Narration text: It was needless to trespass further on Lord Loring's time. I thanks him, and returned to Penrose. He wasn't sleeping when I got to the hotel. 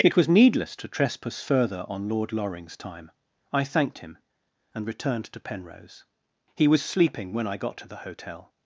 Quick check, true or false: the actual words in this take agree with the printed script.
false